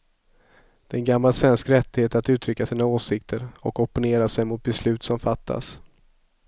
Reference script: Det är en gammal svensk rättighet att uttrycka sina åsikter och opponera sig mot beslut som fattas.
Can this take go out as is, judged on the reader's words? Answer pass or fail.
pass